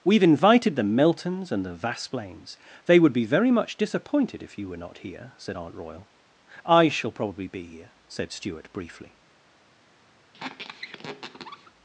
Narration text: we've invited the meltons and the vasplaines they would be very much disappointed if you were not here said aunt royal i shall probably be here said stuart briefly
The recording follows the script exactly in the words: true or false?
true